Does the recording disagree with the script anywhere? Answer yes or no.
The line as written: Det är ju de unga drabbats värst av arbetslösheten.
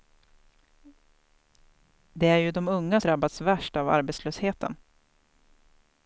no